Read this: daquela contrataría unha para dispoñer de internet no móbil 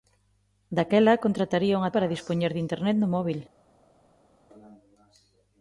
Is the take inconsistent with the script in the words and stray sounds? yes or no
no